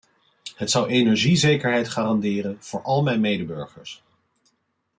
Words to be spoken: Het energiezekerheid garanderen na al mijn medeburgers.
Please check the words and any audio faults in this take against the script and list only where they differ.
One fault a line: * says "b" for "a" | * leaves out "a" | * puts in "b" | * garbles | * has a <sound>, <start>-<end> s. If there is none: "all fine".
* puts in "zou"
* says "voor" for "na"